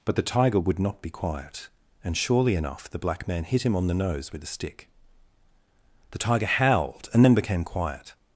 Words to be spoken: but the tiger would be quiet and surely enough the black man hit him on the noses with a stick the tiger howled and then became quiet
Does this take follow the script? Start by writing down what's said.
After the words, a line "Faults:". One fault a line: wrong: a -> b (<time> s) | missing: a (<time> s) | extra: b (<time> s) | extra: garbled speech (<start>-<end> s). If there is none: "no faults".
but the tiger would not be quiet and surely enough the black man hit him on the nose with a stick the tiger howled and then became quiet
Faults:
extra: not (0.8 s)
wrong: noses -> nose (3.9 s)